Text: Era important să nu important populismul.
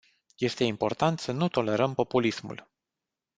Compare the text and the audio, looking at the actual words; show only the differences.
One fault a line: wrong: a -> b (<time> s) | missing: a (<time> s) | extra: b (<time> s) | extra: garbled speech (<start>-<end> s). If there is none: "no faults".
wrong: Era -> Este (0.4 s)
wrong: important -> tolerăm (1.5 s)